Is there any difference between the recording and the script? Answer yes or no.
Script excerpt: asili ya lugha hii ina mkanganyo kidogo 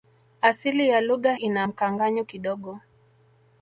yes